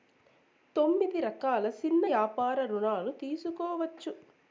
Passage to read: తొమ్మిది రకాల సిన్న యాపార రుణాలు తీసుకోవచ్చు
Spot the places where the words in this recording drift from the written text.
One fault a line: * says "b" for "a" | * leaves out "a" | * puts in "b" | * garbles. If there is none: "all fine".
all fine